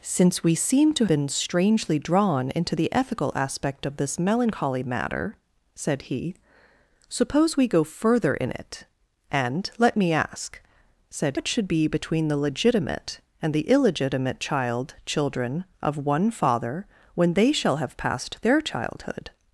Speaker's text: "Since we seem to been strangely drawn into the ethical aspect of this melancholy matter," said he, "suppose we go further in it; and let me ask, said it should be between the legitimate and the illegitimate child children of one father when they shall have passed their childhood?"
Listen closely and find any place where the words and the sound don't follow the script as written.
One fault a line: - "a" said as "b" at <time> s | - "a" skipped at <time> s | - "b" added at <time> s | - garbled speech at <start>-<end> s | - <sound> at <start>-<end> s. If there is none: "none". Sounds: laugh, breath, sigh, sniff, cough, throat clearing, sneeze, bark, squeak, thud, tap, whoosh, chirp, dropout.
none